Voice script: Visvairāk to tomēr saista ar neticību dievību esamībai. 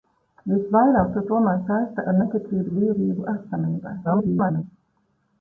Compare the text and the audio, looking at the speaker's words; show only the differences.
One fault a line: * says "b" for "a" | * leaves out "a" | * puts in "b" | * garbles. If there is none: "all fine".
* garbles